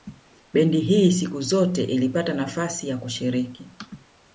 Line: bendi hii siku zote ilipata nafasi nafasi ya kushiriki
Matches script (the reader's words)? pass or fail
fail